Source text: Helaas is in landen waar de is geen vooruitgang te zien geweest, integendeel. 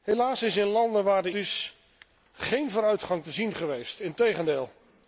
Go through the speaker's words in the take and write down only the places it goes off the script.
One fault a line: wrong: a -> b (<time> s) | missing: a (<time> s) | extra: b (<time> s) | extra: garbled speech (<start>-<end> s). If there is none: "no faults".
no faults